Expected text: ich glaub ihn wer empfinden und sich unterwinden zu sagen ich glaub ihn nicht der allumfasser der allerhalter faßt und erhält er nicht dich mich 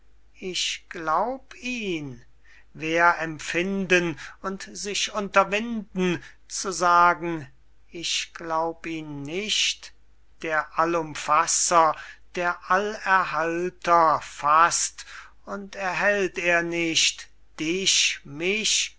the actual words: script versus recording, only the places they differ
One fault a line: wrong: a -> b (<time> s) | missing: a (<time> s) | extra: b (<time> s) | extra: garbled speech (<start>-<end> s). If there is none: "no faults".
no faults